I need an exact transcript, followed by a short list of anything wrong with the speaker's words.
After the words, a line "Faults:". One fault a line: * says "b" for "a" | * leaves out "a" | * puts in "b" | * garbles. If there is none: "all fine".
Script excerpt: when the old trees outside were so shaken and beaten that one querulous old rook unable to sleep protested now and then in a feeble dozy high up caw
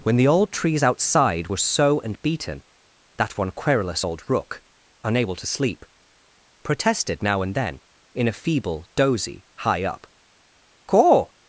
when the old trees outside were so and beaten that one querulous old rook unable to sleep protested now and then in a feeble dozy high up caw
Faults:
* leaves out "shaken"